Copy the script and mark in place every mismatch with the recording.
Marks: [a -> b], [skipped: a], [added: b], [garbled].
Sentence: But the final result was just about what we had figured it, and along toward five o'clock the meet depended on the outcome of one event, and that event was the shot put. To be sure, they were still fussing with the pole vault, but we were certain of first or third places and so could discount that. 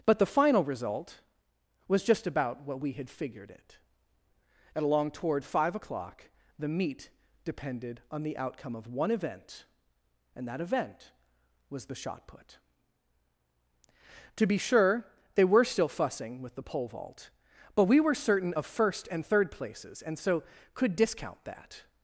But the final result was just about what we had figured it, and along toward five o'clock the meet depended on the outcome of one event, and that event was the shot put. To be sure, they were still fussing with the pole vault, but we were certain of first [or -> and] third places and so could discount that.